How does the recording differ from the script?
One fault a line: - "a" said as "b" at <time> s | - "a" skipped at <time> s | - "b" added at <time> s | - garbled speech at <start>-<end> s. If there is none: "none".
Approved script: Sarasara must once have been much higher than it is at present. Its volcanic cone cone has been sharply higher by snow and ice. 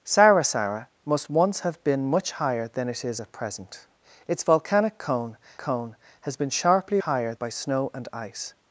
none